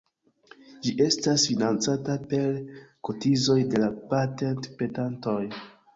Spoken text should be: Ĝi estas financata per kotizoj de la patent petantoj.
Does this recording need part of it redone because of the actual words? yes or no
no